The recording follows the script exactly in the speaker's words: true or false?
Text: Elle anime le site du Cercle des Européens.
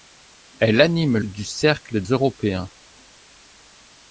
false